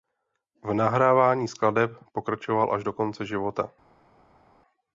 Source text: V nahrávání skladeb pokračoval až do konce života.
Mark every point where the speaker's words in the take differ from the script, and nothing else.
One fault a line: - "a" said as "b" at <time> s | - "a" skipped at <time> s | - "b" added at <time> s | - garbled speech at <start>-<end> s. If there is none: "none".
none